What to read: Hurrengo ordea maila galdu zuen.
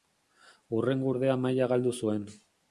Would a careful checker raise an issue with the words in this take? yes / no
no